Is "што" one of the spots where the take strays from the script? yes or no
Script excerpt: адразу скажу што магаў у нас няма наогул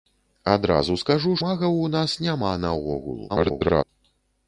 yes